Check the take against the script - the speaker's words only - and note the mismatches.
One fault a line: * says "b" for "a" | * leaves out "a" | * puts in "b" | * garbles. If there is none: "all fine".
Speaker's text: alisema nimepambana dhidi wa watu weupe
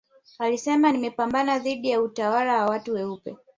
* puts in "ya utawala"